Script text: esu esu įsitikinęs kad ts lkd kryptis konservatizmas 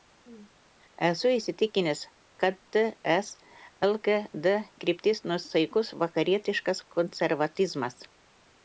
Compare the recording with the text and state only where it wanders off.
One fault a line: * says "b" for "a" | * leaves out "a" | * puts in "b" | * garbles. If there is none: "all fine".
* leaves out "esu"
* puts in "nuosaikus vakarietiškas"